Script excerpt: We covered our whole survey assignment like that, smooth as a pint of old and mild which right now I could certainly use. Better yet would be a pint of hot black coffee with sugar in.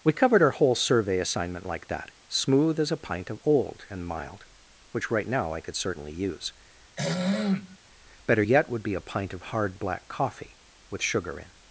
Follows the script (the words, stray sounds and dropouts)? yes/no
no